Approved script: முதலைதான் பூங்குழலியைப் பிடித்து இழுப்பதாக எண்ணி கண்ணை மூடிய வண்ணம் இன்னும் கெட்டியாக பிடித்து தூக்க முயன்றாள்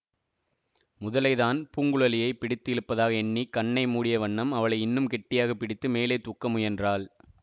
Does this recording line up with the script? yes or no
no